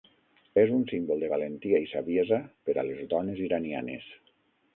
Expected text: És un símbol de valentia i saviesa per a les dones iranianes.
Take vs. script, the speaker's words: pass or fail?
pass